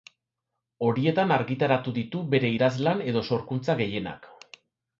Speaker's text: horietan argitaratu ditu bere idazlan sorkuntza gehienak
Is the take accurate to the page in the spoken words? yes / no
no